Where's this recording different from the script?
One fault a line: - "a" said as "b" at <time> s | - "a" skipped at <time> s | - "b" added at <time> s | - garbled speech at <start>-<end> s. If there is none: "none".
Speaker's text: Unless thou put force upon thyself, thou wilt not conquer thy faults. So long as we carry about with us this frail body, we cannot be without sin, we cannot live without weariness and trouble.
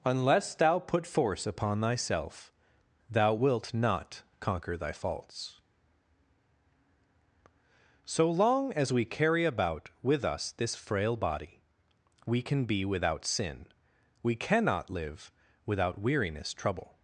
- "cannot" said as "can" at 12.4 s
- "and" skipped at 16.5 s